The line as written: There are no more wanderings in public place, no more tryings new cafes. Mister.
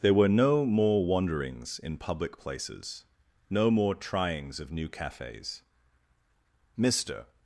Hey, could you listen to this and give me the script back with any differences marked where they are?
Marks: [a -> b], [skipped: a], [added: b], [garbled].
There [are -> were] no more wanderings in public [place, -> places] no more tryings [added: of] new cafes. Mister.